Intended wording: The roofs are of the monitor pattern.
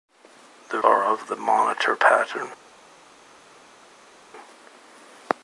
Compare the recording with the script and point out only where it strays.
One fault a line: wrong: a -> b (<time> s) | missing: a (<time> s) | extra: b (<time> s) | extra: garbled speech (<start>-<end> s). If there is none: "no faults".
missing: roofs (0.8 s)